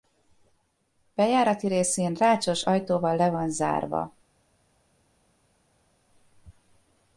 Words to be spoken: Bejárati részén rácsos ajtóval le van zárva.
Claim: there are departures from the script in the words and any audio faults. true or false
false